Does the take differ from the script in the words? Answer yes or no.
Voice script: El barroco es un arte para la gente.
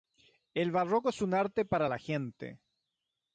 no